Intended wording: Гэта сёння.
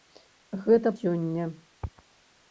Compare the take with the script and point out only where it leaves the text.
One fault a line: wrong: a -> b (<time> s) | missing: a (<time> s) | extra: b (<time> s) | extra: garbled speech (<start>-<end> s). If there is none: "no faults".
no faults